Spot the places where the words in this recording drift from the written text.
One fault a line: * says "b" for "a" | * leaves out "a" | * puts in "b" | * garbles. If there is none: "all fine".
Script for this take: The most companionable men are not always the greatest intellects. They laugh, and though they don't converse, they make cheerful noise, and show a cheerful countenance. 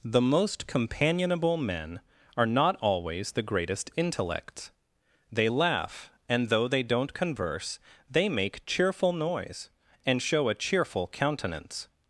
all fine